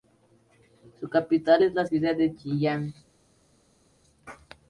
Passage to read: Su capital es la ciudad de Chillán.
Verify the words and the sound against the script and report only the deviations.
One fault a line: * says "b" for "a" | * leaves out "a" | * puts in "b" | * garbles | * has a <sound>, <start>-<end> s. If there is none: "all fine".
all fine